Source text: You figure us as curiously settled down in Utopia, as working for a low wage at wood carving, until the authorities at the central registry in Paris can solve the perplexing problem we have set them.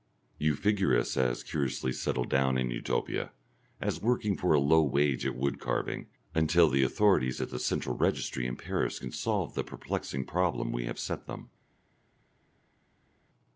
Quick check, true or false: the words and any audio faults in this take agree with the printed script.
true